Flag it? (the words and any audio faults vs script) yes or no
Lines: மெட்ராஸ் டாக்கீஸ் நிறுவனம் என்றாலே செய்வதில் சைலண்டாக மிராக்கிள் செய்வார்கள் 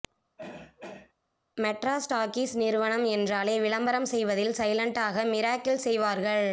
yes